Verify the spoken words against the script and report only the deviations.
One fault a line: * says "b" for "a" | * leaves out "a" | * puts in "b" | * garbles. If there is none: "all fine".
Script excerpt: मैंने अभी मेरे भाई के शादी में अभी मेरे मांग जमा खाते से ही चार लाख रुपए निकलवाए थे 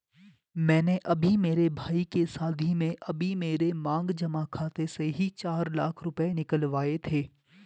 all fine